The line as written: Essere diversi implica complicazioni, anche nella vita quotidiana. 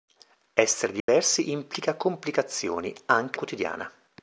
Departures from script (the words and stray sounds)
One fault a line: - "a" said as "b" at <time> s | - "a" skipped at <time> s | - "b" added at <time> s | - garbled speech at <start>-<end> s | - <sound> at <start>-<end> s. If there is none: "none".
- dropout at 1.0-1.1 s
- "nella vita" skipped at 3.4 s